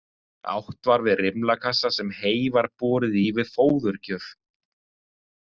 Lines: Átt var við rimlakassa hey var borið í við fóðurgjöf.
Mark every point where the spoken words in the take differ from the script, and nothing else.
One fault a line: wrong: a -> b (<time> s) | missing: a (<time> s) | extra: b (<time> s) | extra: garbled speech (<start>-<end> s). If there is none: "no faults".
extra: sem (2.0 s)